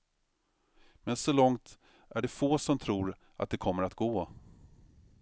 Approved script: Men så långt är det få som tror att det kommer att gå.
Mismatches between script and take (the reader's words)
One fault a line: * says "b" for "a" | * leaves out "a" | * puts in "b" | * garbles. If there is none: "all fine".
all fine